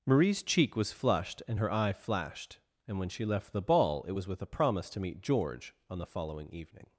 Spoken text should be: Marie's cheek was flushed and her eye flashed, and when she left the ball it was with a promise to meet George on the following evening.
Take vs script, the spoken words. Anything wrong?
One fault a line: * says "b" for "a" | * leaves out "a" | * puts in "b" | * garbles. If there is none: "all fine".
all fine